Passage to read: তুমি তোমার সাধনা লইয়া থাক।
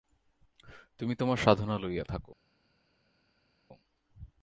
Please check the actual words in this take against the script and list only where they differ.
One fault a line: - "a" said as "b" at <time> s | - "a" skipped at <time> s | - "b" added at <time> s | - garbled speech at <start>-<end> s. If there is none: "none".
none